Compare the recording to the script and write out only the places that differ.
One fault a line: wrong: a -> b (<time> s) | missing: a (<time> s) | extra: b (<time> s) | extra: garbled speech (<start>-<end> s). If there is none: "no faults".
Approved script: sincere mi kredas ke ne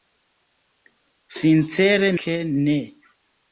missing: mi kredas (2.1 s)